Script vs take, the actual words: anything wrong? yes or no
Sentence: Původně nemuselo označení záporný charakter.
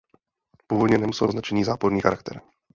no